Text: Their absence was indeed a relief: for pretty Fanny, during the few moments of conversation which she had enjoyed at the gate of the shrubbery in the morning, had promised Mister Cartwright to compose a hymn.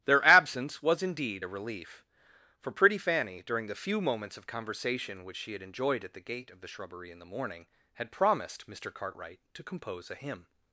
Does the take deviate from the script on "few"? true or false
false